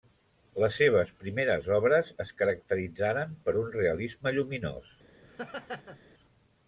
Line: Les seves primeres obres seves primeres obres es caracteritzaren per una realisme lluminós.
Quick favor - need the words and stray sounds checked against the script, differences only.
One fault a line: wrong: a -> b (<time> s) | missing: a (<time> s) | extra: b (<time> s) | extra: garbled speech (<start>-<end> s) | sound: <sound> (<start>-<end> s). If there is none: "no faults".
missing: seves primeres obres (2.1 s)
wrong: una -> un (3.6 s)
sound: laugh (5.2-6.0 s)